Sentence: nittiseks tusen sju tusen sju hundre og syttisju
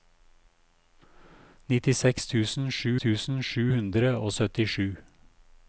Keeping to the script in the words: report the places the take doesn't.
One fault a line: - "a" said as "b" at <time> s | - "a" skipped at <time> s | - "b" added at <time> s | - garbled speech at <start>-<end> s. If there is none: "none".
none